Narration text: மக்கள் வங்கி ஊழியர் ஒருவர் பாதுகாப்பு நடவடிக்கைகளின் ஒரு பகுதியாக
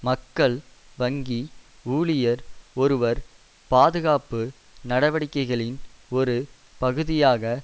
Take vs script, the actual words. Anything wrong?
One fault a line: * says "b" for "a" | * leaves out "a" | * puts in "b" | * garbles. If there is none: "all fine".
all fine